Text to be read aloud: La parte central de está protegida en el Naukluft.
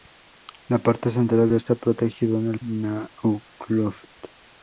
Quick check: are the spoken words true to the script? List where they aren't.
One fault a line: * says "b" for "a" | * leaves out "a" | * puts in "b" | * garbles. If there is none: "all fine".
all fine